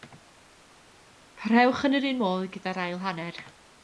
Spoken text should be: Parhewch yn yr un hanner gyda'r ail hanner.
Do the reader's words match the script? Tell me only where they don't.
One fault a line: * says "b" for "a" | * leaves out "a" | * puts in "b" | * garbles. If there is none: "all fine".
* says "modd" for "hanner"